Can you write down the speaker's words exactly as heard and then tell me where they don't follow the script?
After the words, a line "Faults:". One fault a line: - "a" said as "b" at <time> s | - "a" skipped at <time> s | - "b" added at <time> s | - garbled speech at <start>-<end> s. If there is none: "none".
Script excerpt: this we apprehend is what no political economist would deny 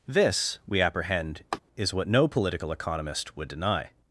this we apprehend is what no political economist would deny
Faults:
none